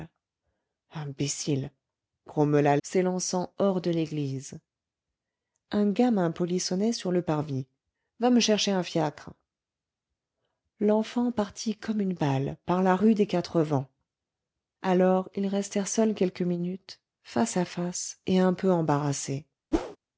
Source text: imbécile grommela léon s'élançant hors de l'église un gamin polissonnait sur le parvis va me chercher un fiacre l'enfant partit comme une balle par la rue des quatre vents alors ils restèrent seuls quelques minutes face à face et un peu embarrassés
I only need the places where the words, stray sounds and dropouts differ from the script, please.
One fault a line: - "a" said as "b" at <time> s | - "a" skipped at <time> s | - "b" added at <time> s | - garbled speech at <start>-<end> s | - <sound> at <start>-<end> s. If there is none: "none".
- "léon" skipped at 2.8 s
- whoosh at 19.7-20.0 s